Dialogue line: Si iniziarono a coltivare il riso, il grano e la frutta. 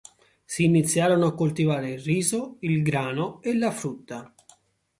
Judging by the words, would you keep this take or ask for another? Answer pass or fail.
pass